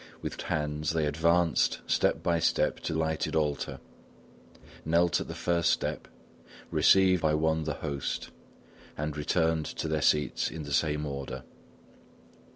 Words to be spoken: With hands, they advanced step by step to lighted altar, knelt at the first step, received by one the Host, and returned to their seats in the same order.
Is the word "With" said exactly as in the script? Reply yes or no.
yes